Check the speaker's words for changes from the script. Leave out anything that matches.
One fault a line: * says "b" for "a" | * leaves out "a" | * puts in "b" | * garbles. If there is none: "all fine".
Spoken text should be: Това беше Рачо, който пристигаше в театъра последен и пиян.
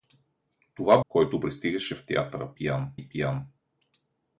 * leaves out "беше Рачо"
* says "пиян" for "последен"